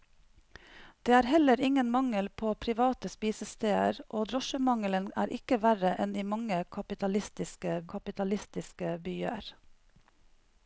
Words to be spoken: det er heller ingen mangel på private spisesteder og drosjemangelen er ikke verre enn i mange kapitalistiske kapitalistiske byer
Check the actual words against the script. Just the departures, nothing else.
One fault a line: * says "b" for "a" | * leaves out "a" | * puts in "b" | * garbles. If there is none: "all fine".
all fine